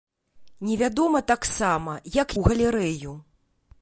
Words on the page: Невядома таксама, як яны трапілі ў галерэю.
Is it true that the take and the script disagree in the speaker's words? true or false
true